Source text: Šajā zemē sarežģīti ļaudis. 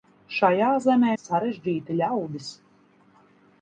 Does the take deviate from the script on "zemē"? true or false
false